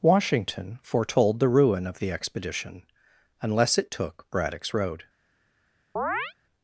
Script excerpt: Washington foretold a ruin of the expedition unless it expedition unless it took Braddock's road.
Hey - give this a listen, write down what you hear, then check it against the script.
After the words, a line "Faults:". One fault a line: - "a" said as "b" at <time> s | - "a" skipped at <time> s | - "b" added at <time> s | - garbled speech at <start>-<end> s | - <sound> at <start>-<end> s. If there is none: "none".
Washington foretold the ruin of the expedition unless it took Braddock's road.
Faults:
- "a" said as "the" at 1.4 s
- "expedition unless it" skipped at 3.9 s
- chirp at 6.0-6.3 s